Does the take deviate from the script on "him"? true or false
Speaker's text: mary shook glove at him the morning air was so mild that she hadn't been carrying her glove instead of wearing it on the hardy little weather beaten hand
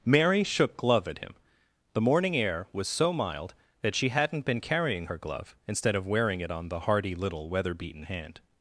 false